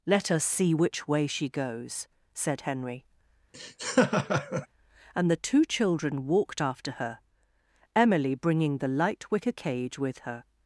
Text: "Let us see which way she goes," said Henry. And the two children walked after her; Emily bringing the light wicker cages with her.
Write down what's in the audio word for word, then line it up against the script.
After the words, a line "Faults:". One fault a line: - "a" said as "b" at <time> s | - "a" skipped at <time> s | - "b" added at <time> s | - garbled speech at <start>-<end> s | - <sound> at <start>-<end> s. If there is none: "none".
"Let us see which way she goes," said Henry. And the two children walked after her; Emily bringing the light wicker cage with her.
Faults:
- laugh at 3.5-4.7 s
- "cages" said as "cage" at 9.5 s